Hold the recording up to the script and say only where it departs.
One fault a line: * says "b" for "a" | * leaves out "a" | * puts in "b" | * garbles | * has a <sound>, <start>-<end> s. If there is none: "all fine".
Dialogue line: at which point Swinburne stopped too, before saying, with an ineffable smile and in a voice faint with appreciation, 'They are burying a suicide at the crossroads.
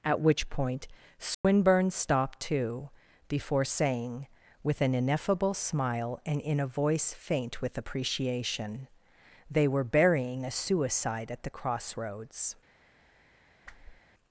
* has a dropout, 1.3-1.4 s
* says "were" for "are"
* has a whoosh, 13.7-14.0 s